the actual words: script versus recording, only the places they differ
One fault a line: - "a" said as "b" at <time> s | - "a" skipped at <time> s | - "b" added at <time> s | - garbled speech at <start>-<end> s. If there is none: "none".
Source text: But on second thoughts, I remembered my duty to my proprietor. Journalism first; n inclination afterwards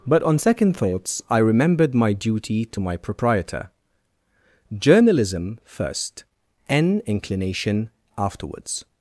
none